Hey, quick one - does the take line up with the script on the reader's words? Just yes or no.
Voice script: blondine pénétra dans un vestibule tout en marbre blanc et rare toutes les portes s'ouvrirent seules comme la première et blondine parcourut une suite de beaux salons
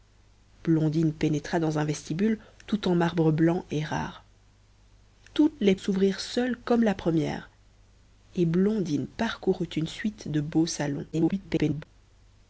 no